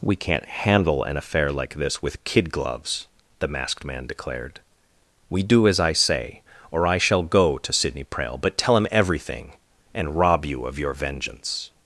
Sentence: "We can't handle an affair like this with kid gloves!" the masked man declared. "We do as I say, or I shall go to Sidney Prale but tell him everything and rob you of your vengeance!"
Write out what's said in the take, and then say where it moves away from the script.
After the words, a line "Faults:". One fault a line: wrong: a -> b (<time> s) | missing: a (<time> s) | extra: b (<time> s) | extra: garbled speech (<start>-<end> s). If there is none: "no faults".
"We can't handle an affair like this with kid gloves!" the masked man declared. "We do as I say, or I shall go to Sidney Prale but tell him everything and rob you of your vengeance!"
Faults:
no faults